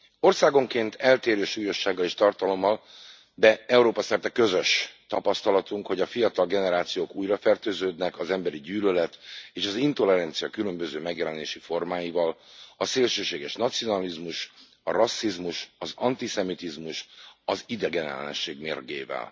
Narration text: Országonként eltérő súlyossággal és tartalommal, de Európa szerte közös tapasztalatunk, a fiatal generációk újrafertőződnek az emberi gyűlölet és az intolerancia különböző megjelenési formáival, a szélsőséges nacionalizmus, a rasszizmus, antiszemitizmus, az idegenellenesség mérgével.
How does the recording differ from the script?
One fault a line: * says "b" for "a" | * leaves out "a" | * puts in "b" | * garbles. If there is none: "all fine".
* puts in "hogy"
* puts in "az"